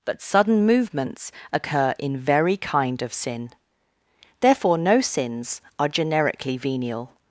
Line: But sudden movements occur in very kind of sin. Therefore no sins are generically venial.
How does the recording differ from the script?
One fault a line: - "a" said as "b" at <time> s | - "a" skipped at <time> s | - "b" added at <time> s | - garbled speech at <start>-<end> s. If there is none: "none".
none